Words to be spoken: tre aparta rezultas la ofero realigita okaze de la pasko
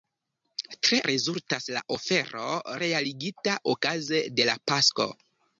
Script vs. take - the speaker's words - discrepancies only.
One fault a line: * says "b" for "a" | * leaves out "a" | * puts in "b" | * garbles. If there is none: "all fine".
* leaves out "aparta"